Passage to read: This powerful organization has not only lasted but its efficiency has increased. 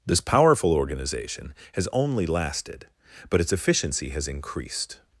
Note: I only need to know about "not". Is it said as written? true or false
false